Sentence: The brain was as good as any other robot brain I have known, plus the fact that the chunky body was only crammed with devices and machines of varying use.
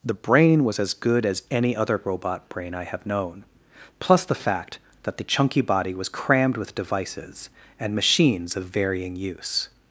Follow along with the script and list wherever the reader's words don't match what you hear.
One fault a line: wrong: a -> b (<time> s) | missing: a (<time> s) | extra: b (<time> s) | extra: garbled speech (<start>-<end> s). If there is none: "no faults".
missing: only (6.1 s)